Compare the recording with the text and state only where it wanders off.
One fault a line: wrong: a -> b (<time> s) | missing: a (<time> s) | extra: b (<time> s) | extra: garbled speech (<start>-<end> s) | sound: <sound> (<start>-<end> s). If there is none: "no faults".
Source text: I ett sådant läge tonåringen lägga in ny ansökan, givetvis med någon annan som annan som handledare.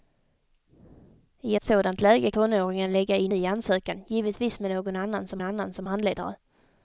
no faults